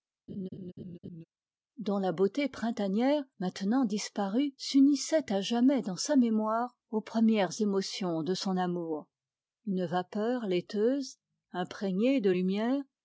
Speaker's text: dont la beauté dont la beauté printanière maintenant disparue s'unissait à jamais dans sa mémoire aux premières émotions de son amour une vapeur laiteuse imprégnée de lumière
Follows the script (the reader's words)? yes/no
no